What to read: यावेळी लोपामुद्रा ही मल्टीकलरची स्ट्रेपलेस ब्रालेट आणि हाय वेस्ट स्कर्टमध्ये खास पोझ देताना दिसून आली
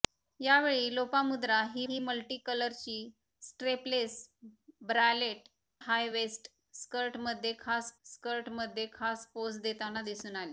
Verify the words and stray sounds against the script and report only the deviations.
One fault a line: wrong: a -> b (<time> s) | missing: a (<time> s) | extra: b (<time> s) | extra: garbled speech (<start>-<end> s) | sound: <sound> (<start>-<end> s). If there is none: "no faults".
extra: ही (1.9 s)
missing: आणि (5.5 s)
extra: स्कर्टमध्ये खास (8.0 s)